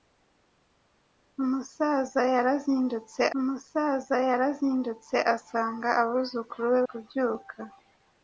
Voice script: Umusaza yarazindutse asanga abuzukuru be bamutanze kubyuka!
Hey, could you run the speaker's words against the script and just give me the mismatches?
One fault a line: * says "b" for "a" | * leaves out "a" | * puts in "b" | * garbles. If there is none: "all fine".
* puts in "umusaza yarazindutse"
* leaves out "bamutanze"